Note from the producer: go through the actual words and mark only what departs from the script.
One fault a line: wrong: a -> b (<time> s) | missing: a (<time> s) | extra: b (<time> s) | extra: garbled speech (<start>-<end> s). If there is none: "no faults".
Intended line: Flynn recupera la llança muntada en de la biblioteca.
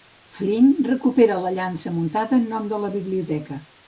extra: nom (2.5 s)